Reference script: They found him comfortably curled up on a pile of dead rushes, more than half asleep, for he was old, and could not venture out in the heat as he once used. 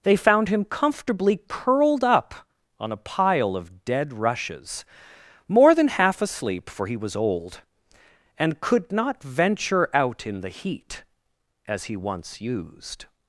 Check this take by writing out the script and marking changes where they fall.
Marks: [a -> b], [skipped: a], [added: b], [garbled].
They found him comfortably curled up on a pile of dead rushes, more than half asleep, for he was old, and could not venture out in the heat as he once used.